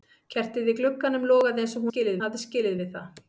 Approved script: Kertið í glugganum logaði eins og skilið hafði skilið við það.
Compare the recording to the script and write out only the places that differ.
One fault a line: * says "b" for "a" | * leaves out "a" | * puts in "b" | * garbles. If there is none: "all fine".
all fine